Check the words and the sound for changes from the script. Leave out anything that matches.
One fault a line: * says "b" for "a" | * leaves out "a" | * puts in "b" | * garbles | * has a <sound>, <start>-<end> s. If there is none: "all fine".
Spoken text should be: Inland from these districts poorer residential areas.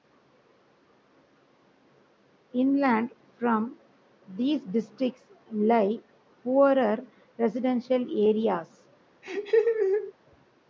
* puts in "lie"
* has a laugh, 9.2-10.1 s